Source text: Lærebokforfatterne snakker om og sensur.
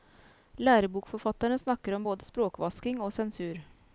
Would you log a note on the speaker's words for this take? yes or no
yes